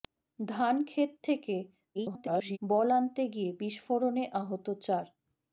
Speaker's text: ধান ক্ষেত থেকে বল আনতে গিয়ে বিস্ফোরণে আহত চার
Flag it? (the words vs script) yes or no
yes